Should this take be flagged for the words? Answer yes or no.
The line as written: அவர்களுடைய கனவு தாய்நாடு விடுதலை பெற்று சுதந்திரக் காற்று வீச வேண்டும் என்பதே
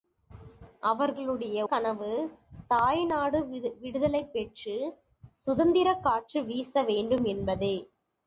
no